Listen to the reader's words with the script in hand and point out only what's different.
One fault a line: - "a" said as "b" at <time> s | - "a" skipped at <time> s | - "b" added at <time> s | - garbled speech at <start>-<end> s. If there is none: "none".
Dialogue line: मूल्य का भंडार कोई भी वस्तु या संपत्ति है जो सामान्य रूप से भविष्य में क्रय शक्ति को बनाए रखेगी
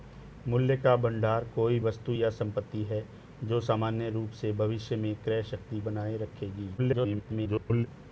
- "भी" skipped at 1.8 s
- "को" skipped at 5.8 s
- garbled speech at 6.8-7.9 s